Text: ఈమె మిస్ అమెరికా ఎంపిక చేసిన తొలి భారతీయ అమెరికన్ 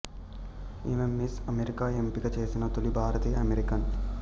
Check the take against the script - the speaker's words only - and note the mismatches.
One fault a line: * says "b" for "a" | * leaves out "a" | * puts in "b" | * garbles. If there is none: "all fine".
all fine